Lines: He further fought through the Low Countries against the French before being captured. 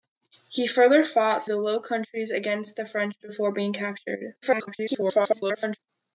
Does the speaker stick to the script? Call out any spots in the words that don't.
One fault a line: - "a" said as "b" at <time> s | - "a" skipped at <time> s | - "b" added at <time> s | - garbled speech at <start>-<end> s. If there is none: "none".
- "through" skipped at 1.5 s
- garbled speech at 4.4-5.8 s